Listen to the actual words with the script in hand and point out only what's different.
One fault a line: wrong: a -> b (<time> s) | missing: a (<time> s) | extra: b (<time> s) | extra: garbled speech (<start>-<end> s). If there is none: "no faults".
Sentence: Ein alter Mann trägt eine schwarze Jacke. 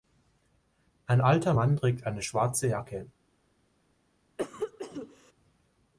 no faults